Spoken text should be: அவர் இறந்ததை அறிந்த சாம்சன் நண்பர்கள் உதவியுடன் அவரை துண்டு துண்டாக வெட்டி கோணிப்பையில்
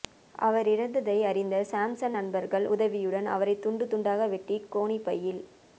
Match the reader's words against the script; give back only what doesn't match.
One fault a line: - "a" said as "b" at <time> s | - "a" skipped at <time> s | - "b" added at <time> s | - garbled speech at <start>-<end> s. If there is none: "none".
none